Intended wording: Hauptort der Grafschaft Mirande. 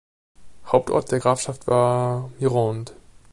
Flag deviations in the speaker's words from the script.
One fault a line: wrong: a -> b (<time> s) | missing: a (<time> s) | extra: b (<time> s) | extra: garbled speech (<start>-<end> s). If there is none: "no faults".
extra: war (1.7 s)